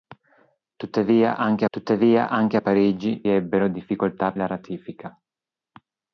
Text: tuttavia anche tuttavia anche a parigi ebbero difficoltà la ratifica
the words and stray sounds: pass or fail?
pass